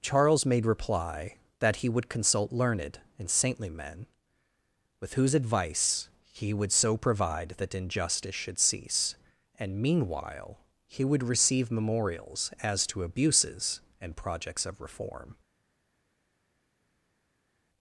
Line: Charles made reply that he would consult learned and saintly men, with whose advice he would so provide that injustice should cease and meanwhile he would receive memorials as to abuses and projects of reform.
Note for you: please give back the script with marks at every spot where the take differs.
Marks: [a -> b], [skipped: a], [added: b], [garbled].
Charles made reply that he would consult learned and saintly men, with whose advice he would so provide that injustice should cease and meanwhile he would receive memorials as to abuses and projects of reform.